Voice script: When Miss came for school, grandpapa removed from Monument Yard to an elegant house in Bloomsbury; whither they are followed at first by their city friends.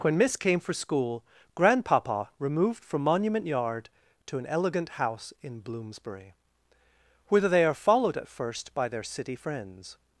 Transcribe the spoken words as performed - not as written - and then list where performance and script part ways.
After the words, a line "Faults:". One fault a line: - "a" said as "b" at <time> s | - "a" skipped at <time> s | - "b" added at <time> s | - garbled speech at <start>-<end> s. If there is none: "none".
When Miss came for school, grandpapa removed from Monument Yard to an elegant house in Bloomsbury; whither they are followed at first by their city friends.
Faults:
none